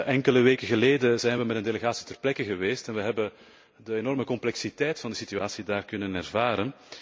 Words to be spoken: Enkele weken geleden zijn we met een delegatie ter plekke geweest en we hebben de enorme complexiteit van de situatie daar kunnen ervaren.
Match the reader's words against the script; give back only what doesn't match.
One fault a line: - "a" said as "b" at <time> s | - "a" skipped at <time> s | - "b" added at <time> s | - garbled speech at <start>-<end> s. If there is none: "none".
none